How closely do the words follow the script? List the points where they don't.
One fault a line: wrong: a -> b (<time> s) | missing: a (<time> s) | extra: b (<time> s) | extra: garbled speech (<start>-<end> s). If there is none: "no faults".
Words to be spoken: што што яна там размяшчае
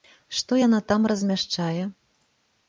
missing: што (0.6 s)